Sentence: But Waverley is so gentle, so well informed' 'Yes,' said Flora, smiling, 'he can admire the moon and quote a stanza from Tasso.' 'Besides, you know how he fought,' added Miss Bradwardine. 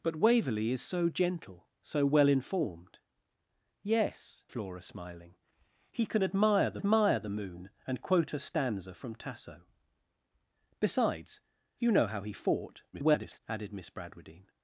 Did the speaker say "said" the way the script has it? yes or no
no